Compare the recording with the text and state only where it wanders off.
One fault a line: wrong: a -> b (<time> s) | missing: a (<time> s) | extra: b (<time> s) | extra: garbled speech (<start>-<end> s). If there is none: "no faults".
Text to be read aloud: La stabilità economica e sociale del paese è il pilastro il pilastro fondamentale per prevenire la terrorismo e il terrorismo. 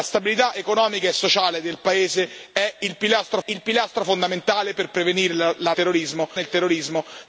no faults